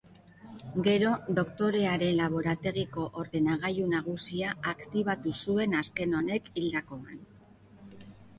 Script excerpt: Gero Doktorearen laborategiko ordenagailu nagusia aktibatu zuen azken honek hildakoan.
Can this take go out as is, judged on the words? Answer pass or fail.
pass